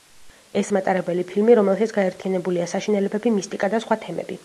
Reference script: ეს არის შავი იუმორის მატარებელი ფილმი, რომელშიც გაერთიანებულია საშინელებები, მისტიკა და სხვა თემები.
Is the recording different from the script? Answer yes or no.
yes